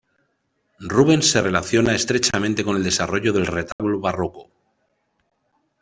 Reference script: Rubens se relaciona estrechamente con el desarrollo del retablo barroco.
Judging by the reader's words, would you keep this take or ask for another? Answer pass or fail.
pass